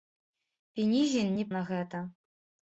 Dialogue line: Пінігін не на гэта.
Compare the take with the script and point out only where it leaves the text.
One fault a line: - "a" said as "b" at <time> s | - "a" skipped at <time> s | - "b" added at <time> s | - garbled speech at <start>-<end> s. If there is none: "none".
none